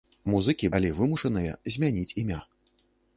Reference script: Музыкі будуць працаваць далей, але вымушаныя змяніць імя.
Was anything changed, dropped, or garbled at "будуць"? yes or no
yes